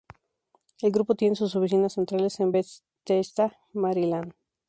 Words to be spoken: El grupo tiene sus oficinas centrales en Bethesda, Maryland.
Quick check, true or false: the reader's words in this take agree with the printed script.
true